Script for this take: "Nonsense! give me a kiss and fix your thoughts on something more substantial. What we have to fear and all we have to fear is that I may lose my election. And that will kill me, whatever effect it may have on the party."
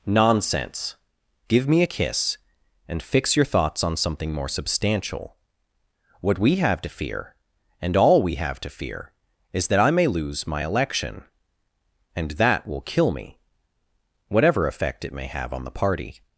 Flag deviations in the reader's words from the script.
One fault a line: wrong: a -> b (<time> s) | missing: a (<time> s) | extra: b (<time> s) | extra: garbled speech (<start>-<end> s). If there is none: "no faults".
no faults